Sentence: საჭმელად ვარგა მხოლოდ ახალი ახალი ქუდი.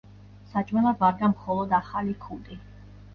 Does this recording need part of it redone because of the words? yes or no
yes